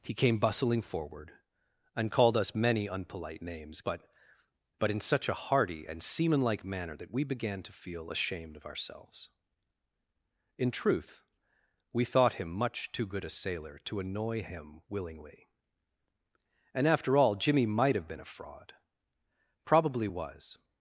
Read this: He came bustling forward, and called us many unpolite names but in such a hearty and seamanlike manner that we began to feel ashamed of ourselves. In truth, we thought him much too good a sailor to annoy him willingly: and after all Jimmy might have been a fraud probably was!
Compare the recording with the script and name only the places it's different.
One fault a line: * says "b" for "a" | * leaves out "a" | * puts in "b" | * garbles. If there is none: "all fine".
* puts in "but"